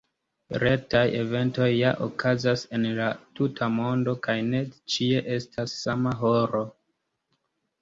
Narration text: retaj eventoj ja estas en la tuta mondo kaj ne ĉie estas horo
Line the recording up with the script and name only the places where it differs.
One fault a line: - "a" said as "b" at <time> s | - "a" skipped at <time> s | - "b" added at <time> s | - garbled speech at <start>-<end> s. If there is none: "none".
- "estas" said as "okazas" at 2.0 s
- "sama" added at 5.8 s